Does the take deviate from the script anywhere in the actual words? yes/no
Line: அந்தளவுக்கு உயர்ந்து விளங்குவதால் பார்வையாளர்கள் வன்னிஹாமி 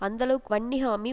yes